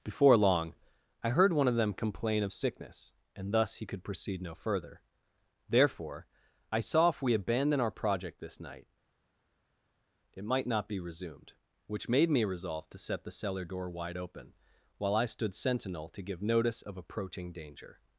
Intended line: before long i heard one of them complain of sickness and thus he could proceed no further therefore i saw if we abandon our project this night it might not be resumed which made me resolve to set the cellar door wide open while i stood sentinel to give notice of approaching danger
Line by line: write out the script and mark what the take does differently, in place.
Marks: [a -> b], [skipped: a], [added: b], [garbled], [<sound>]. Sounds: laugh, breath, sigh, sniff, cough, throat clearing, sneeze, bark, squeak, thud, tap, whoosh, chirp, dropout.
before long i heard one of them complain of sickness and thus he could proceed no further therefore i saw if we abandon our project this night it might not be resumed which made me resolve to set the cellar door wide open while i stood sentinel to give notice of approaching danger